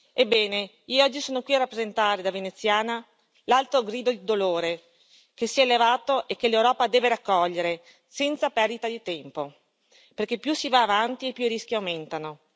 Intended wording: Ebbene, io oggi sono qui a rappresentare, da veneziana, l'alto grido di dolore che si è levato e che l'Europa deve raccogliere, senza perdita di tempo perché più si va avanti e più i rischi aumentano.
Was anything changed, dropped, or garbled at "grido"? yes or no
no